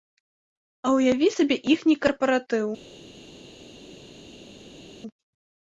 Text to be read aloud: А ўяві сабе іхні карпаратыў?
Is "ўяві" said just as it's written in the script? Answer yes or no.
yes